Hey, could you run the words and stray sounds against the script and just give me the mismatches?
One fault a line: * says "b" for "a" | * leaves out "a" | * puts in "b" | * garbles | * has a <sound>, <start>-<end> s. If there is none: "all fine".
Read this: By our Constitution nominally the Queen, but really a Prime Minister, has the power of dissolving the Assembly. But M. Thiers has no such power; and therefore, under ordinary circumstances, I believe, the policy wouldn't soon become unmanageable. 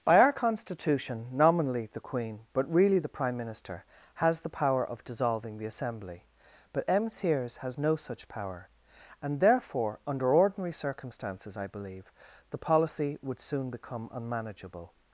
* says "the" for "a"
* says "would" for "wouldn't"